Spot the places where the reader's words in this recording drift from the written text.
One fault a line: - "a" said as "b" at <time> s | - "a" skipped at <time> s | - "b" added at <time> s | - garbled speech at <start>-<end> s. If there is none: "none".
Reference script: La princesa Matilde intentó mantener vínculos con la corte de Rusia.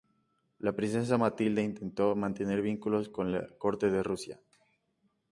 none